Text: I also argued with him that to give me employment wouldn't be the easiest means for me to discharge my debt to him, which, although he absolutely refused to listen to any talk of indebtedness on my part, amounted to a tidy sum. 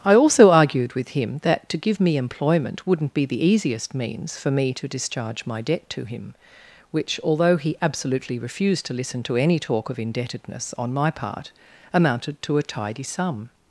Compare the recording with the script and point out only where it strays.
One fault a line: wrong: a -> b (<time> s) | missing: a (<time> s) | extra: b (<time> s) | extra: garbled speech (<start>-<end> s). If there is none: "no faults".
no faults